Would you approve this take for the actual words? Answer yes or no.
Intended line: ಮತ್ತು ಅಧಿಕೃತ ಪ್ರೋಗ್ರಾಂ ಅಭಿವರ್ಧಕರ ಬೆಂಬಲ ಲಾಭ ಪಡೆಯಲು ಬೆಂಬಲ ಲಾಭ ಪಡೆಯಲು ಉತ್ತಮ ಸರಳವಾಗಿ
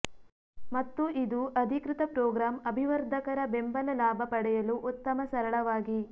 no